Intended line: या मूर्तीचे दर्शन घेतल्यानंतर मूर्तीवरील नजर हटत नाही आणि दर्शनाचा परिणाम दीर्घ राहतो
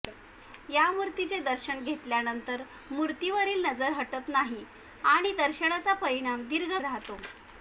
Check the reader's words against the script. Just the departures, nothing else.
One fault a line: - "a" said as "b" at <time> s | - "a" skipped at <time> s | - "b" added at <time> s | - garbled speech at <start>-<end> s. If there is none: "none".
none